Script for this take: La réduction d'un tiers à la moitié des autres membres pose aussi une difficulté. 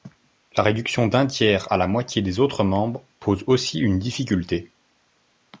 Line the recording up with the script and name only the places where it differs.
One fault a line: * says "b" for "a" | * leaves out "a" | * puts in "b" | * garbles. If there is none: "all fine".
all fine